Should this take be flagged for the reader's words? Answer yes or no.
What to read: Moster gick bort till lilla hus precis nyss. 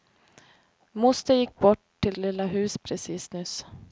no